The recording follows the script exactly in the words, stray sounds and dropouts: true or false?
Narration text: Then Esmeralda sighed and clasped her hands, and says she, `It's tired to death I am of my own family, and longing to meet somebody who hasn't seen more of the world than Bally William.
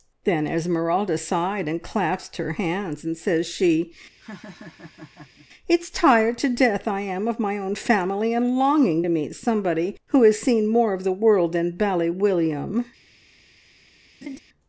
false